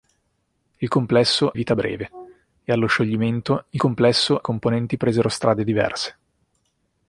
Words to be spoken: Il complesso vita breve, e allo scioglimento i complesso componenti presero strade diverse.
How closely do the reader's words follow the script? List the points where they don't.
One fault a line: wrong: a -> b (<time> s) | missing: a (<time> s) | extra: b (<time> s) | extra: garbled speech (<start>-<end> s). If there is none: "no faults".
no faults